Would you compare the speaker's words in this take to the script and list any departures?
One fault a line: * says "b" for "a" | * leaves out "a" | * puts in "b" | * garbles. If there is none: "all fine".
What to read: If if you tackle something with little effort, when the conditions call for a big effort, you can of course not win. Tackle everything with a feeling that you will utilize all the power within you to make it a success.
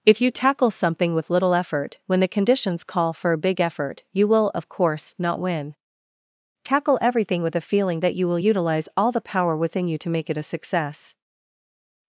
* leaves out "if"
* says "will" for "can"